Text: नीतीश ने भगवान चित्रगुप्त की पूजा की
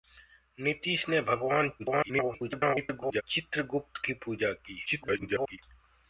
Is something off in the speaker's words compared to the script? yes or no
yes